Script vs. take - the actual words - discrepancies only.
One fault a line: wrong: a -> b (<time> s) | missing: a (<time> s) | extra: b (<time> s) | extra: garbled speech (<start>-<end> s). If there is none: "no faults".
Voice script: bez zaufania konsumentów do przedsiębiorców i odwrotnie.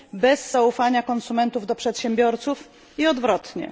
no faults